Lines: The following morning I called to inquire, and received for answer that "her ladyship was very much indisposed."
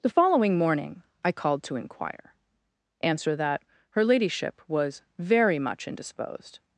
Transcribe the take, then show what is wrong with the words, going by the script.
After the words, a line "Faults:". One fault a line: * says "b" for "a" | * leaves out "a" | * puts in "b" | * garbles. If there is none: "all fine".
The following morning I called to inquire, answer that "her ladyship was very much indisposed."
Faults:
* leaves out "and received for"